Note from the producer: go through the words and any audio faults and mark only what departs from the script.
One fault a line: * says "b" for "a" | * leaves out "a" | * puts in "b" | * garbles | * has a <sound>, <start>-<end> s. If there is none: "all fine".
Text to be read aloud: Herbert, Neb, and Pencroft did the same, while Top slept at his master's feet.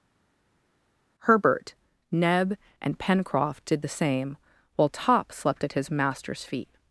all fine